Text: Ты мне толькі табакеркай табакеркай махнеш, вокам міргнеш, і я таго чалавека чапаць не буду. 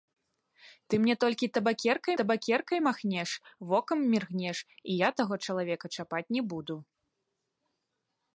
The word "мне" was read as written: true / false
true